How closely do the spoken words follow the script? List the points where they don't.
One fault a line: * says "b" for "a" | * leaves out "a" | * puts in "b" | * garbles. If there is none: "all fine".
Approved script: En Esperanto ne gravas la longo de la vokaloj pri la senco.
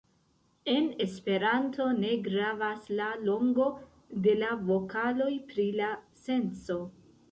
all fine